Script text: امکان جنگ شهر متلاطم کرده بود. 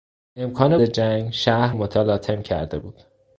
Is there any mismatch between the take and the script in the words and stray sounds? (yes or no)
no